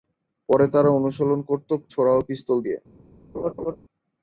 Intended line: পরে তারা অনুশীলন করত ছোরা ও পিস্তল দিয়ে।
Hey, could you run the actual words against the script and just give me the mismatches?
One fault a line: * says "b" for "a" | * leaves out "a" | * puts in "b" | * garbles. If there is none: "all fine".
all fine